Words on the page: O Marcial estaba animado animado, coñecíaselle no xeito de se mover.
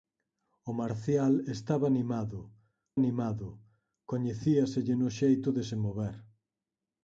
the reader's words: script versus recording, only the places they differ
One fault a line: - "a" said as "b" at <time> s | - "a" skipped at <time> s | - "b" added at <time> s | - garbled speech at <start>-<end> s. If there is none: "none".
none